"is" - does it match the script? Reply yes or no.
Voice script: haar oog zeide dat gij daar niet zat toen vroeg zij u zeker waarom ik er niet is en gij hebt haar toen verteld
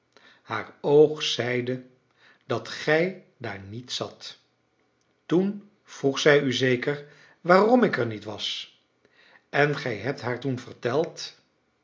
no